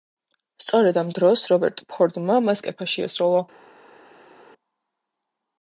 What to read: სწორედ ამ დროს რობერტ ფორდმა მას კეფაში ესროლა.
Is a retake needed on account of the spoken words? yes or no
no